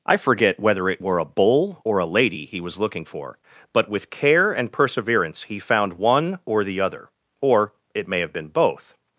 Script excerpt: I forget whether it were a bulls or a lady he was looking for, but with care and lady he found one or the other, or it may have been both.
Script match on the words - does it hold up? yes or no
no